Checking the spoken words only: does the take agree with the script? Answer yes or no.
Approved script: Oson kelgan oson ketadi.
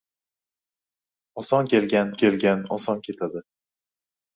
no